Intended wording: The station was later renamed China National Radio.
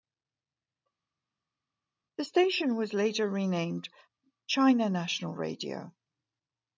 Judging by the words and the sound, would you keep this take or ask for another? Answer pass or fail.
pass